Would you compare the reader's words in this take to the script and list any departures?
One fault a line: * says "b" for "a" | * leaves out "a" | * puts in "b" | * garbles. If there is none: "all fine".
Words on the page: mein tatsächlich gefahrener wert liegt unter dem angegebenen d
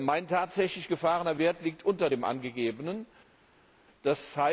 all fine